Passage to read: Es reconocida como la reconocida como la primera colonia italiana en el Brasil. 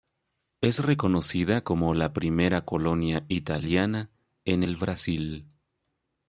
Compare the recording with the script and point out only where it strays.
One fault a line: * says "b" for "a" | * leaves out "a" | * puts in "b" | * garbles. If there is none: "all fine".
* leaves out "reconocida como la"